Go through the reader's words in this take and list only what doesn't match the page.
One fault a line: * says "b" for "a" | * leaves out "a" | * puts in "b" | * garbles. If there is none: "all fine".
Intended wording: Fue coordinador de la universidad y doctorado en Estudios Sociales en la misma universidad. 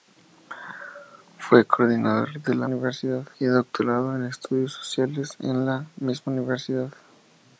all fine